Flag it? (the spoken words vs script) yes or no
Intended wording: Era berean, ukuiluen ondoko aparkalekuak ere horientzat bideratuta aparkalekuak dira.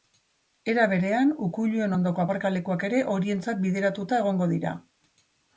yes